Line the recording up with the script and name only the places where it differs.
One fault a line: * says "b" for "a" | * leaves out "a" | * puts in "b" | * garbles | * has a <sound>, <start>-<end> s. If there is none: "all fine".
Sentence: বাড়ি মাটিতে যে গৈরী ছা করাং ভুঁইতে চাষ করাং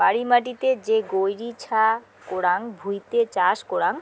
all fine